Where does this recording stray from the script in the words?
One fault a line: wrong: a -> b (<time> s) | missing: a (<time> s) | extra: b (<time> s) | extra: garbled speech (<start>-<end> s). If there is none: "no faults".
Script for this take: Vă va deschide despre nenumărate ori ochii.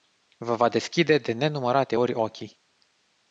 wrong: despre -> de (1.2 s)